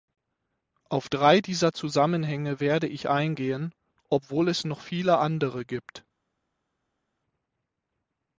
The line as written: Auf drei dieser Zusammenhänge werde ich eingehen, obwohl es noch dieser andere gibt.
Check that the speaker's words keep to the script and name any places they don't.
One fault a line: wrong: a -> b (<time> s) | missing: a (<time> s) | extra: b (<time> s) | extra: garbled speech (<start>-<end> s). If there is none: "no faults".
wrong: dieser -> viele (4.8 s)